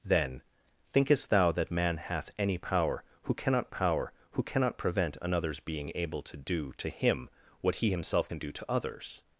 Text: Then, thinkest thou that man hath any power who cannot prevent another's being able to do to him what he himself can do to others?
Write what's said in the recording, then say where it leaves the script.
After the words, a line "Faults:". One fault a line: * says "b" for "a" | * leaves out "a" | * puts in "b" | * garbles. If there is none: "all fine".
Then, thinkest thou that man hath any power who cannot power who cannot prevent another's being able to do to him what he himself can do to others?
Faults:
* puts in "power who cannot"